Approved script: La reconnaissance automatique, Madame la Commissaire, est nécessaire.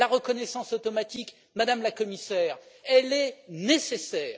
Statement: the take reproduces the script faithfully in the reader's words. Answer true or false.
true